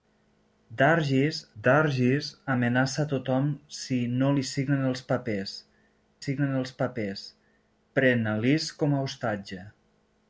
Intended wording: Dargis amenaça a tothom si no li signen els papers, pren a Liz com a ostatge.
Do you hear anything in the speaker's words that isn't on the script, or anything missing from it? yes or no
yes